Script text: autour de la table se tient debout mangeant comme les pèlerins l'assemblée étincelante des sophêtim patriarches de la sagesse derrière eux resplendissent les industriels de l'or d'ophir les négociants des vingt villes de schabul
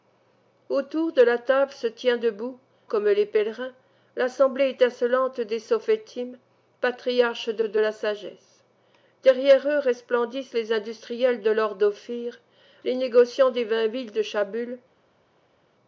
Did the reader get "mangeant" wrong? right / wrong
wrong